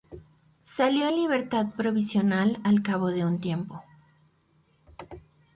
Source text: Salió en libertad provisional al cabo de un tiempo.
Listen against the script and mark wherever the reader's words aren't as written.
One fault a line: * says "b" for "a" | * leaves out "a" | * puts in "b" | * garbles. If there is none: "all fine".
all fine